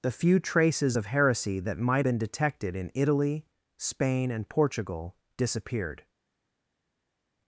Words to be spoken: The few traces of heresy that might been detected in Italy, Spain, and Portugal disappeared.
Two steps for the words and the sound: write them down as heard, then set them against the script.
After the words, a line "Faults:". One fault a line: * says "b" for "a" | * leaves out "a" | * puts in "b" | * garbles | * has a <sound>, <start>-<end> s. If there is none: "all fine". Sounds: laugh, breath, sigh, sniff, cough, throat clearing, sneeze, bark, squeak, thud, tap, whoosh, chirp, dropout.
The few traces of heresy that might been detected in Italy, Spain, and Portugal disappeared.
Faults:
all fine